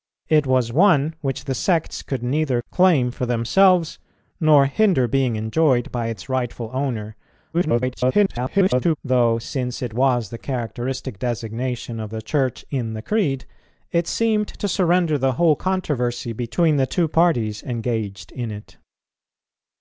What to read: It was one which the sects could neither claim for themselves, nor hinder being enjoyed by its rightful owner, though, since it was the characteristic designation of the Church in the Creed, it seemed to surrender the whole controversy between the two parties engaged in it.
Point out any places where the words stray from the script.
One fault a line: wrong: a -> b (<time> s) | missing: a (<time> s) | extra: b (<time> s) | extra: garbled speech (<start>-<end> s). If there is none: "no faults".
extra: garbled speech (7.5-9.0 s)